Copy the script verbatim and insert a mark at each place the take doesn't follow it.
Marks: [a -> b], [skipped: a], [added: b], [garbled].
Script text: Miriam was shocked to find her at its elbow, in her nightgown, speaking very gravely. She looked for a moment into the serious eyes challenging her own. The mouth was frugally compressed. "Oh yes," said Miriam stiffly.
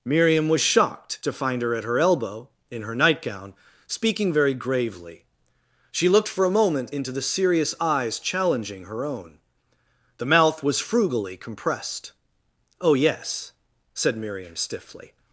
Miriam was shocked to find her at [its -> her] elbow, in her nightgown, speaking very gravely. She looked for a moment into the serious eyes challenging her own. The mouth was frugally compressed. "Oh yes," said Miriam stiffly.